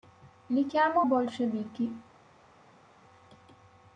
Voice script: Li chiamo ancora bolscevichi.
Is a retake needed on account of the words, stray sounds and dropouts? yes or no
yes